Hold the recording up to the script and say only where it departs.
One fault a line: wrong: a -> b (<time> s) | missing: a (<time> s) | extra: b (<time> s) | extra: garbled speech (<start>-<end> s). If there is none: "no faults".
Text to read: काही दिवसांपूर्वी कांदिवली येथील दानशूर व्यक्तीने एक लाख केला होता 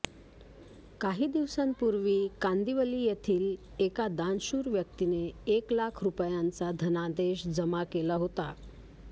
extra: एका (3.8 s)
extra: रुपयांचा धनादेश जमा (6.0 s)